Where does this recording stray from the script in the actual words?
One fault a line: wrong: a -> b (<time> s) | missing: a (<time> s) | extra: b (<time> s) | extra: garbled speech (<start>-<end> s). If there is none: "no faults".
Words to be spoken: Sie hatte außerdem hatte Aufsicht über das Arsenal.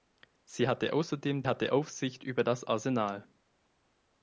no faults